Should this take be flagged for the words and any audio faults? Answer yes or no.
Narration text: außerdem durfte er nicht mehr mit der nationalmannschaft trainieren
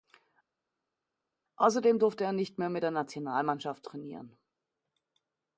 no